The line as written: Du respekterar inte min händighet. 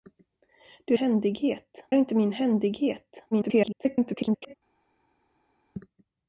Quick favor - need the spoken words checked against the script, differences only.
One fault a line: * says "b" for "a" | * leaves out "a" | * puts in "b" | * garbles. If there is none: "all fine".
* says "händighet" for "respekterar"
* garbles